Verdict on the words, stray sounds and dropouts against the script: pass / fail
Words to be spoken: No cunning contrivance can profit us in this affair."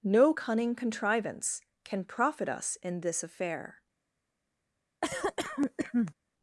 fail